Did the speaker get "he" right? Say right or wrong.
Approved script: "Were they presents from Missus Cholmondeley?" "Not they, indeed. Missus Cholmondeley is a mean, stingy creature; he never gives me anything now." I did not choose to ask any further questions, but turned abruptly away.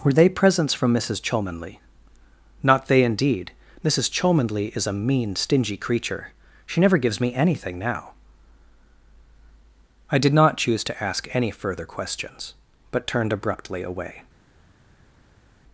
wrong